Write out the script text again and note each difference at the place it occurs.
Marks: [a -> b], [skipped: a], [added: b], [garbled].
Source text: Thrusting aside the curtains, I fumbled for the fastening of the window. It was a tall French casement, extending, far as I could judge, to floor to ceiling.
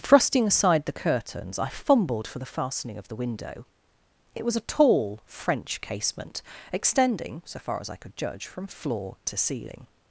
Thrusting aside the curtains, I fumbled for the fastening of the window. It was a tall French casement, extending, [added: so] far as I could judge, [to -> from] floor to ceiling.